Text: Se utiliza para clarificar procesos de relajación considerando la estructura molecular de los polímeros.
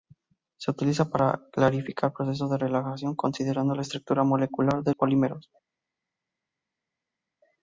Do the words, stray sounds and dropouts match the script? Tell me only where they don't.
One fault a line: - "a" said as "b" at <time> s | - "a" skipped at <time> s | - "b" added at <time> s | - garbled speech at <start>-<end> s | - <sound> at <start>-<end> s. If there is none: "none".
- "los" skipped at 5.0 s